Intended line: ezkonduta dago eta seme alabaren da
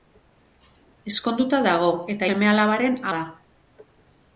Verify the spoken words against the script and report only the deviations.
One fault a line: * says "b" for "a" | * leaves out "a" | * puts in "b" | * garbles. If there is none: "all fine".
all fine